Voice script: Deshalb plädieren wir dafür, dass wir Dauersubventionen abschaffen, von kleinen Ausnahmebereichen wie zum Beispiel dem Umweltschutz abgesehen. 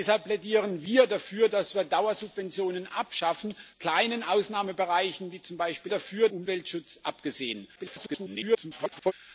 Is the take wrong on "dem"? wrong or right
wrong